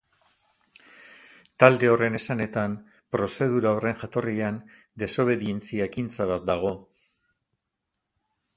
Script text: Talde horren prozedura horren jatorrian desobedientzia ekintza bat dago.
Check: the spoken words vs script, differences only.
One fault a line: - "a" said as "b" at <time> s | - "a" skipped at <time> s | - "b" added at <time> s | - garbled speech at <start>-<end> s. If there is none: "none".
- "esanetan" added at 2.2 s